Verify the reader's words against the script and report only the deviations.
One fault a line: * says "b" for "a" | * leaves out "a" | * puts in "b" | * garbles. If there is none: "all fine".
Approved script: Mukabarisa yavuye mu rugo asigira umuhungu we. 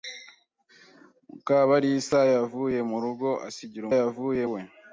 * says "yavuye" for "umuhungu"